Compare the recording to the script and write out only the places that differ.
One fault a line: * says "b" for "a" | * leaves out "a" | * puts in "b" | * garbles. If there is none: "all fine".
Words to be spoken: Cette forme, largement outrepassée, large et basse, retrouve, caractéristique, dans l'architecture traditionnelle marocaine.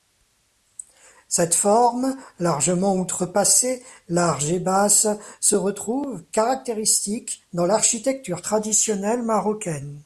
* puts in "se"